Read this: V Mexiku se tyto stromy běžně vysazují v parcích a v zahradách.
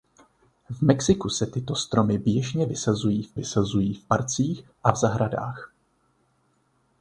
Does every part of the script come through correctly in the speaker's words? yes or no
no